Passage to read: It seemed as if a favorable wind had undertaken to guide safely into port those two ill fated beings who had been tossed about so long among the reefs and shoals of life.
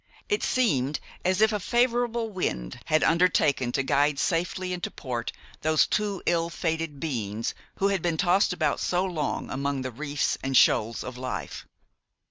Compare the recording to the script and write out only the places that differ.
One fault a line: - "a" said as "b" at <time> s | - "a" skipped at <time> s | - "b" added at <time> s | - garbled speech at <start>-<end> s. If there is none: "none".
none